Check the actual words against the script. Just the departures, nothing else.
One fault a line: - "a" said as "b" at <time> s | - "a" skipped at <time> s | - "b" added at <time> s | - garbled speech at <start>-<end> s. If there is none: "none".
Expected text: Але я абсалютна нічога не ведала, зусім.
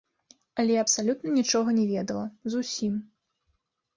none